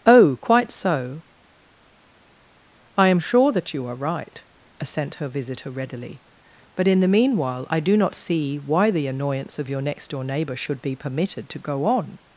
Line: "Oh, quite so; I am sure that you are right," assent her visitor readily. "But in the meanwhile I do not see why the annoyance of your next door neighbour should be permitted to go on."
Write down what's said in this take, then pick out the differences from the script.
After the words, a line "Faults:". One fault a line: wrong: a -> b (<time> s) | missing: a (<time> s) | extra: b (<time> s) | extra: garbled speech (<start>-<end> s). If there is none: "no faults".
"Oh, quite so; I am sure that you are right," assent her visitor readily. "But in the meanwhile I do not see why the annoyance of your next door neighbour should be permitted to go on."
Faults:
no faults